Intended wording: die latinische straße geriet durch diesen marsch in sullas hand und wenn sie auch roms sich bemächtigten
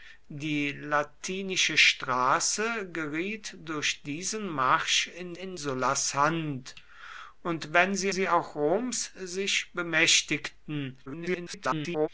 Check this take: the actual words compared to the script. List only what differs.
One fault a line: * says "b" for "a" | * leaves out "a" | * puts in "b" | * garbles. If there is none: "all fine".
* puts in "in"
* puts in "sie"
* garbles